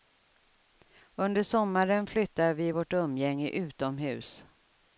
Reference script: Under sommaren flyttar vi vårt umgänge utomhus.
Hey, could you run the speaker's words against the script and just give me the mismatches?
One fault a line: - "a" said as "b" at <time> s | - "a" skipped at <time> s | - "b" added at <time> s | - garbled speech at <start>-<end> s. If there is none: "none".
none